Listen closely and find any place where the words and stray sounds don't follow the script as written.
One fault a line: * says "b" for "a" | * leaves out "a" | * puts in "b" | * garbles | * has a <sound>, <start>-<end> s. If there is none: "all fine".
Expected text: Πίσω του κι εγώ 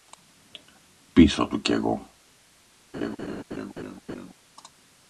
* has a laugh, 2.9-4.3 s